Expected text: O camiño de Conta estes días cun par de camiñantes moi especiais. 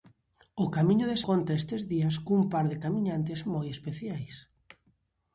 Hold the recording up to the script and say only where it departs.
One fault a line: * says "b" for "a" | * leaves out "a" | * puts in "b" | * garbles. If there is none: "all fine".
all fine